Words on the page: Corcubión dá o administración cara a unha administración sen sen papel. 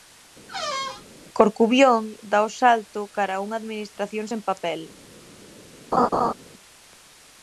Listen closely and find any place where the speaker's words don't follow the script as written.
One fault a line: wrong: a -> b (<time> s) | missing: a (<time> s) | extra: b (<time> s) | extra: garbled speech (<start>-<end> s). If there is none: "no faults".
wrong: administración -> salto (2.6 s)
missing: sen (4.4 s)